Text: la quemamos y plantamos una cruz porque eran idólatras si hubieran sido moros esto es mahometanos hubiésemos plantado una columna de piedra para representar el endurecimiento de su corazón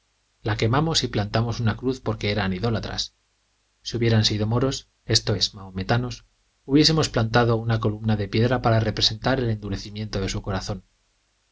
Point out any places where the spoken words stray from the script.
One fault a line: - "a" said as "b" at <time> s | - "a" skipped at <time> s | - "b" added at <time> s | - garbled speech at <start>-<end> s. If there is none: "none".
none